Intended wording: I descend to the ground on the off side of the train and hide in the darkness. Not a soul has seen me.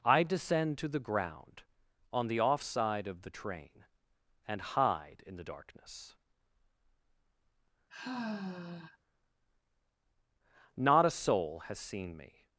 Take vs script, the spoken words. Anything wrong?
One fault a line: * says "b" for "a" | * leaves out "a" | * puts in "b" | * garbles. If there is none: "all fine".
all fine